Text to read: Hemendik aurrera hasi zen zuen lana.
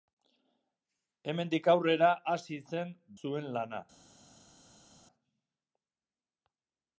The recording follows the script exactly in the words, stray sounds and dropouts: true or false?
true